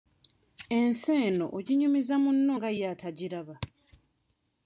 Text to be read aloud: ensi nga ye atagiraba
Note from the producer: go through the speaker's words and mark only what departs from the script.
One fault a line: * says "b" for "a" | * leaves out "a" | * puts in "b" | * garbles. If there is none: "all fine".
* puts in "eno oginyumiza munno"